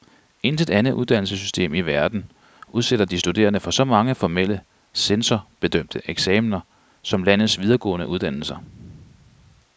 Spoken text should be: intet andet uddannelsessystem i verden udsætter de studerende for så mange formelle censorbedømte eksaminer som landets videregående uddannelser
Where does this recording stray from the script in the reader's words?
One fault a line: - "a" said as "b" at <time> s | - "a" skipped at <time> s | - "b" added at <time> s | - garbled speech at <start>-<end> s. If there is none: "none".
none